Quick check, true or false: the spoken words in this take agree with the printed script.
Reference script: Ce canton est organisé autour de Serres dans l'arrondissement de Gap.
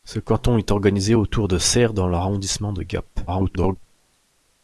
false